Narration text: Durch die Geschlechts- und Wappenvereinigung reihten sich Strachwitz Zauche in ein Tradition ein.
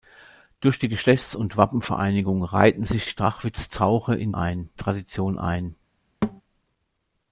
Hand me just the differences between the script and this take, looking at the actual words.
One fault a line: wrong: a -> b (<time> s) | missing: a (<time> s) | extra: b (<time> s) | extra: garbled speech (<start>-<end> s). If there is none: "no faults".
no faults